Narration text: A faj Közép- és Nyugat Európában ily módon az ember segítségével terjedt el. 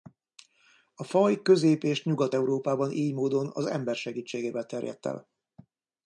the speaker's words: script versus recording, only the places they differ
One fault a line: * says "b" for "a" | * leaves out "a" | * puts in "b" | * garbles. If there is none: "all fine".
all fine